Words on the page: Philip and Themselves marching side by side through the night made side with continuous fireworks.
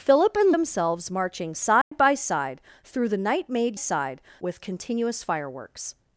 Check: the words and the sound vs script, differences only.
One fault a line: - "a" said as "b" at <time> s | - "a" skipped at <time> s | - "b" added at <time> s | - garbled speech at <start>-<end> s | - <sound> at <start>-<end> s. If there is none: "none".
- dropout at 1.8-1.9 s